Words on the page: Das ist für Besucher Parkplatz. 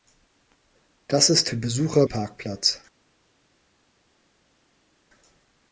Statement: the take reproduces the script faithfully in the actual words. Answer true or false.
true